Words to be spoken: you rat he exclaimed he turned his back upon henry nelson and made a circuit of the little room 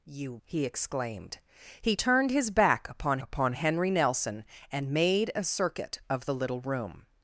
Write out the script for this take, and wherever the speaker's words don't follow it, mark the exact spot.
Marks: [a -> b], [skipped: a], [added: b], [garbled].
you [skipped: rat] he exclaimed he turned his back upon [added: upon] henry nelson and made a circuit of the little room